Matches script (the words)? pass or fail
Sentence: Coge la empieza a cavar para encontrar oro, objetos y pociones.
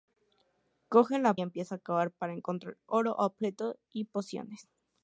pass